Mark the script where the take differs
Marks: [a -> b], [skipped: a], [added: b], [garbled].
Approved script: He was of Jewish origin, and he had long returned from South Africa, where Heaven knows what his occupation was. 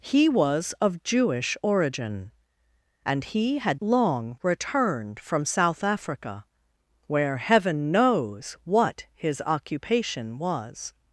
He was of Jewish origin, and he had long returned from South Africa, where Heaven knows what his occupation was.